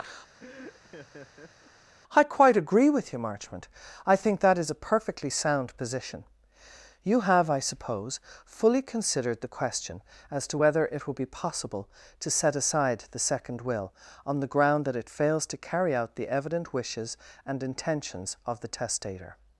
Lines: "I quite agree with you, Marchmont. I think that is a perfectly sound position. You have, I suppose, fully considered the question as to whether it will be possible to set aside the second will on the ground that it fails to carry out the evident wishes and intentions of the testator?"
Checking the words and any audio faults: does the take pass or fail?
fail